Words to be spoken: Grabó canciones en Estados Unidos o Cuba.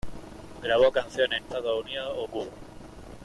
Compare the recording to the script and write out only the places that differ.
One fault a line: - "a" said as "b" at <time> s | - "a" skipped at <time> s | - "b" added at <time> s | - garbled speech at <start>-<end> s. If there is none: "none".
none